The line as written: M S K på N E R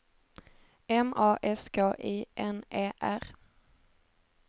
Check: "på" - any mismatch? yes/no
yes